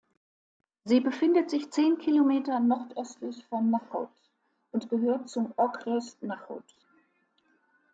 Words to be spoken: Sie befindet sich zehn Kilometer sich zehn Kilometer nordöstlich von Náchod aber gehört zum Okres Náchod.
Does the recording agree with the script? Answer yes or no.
no